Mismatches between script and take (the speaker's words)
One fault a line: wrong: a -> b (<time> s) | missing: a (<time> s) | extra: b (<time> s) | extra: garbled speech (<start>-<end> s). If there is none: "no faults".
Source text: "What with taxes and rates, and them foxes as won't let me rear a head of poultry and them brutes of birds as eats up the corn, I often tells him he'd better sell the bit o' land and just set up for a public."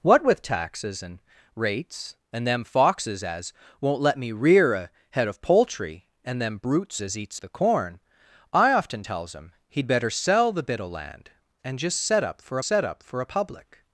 missing: of birds (7.0 s)
missing: up (7.4 s)
extra: set up for (12.6 s)